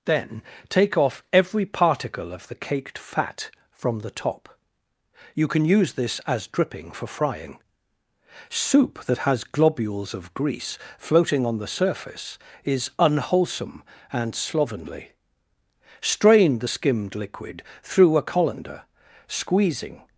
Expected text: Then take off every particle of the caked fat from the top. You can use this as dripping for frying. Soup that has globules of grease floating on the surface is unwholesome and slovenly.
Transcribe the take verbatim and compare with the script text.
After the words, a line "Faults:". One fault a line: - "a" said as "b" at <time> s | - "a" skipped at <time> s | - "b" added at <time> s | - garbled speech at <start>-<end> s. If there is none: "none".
Then take off every particle of the caked fat from the top. You can use this as dripping for frying. Soup that has globules of grease floating on the surface is unwholesome and slovenly. Strain the skimmed liquid through a colander, squeezing
Faults:
- "Strain the skimmed liquid through a colander squeezing" added at 16.0 s